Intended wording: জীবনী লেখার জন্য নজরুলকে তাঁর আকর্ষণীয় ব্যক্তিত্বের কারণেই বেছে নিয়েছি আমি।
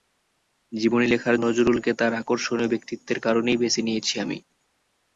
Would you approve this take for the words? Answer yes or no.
no